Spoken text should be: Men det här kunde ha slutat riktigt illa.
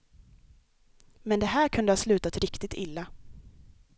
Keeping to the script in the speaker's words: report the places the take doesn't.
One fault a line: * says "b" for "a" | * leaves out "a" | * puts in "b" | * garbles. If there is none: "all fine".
all fine